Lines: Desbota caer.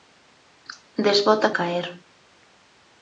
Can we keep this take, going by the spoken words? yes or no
yes